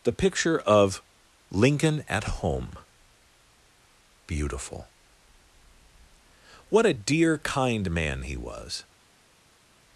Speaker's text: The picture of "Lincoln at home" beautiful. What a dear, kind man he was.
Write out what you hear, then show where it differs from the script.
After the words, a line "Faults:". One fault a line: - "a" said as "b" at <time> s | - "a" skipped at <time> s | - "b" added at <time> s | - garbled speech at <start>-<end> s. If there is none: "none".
The picture of "Lincoln at home" beautiful. What a dear, kind man he was.
Faults:
none